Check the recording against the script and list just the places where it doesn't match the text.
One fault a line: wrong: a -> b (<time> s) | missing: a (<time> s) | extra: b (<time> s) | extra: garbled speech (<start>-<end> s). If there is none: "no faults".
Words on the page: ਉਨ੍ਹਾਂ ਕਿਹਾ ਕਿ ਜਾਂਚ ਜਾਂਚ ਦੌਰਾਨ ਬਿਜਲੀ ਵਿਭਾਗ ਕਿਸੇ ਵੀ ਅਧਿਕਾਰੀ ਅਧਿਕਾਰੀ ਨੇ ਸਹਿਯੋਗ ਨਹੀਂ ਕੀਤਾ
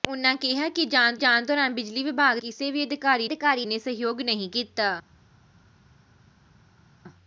no faults